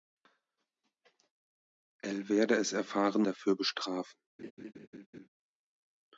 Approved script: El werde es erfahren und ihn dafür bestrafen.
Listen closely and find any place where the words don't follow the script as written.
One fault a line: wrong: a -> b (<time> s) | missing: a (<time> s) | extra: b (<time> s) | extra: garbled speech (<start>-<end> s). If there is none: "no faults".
missing: und ihn (3.2 s)